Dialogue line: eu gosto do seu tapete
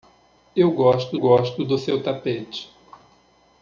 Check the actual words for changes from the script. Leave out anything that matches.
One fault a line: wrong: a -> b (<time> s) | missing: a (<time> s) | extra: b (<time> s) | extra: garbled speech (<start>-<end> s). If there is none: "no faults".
extra: gosto (1.2 s)